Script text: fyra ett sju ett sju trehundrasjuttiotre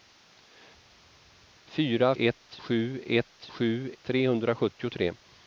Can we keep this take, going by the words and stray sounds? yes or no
yes